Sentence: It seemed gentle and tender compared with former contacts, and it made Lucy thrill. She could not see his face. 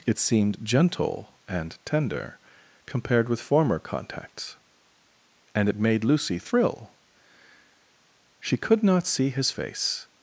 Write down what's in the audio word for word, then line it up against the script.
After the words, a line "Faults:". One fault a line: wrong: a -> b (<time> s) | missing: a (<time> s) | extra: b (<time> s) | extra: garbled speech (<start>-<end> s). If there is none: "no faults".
It seemed gentle and tender compared with former contacts, and it made Lucy thrill. She could not see his face.
Faults:
no faults